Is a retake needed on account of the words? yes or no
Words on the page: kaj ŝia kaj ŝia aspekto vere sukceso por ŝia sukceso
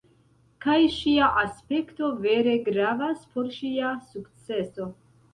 yes